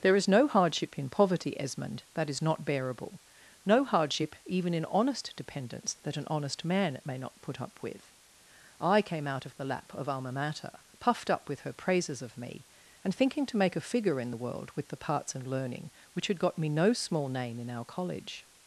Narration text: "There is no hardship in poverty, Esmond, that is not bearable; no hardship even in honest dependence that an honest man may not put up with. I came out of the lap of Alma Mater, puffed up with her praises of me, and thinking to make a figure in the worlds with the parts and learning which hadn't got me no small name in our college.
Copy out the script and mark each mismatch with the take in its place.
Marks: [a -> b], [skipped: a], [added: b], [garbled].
"There is no hardship in poverty, Esmond, that is not bearable; no hardship even in honest dependence that an honest man may not put up with. I came out of the lap of Alma Mater, puffed up with her praises of me, and thinking to make a figure in the [worlds -> world] with the parts and learning which [hadn't -> had] got me no small name in our college.